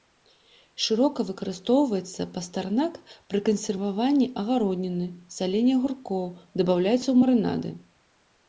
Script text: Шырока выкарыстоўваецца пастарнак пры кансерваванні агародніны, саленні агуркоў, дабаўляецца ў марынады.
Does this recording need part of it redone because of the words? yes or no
no